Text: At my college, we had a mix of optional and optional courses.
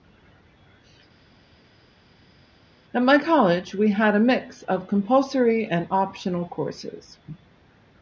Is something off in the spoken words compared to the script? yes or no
yes